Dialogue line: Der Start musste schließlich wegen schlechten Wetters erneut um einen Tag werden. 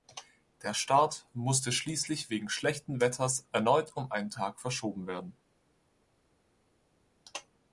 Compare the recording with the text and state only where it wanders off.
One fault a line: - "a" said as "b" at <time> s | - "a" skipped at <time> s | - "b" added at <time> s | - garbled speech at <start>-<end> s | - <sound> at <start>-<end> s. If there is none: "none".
- "verschoben" added at 4.6 s